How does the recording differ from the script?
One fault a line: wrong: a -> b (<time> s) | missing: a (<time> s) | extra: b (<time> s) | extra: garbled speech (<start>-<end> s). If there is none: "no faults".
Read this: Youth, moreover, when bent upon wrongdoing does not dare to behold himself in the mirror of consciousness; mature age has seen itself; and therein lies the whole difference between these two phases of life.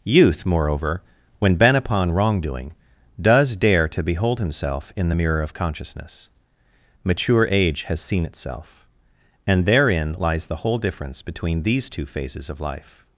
missing: not (3.5 s)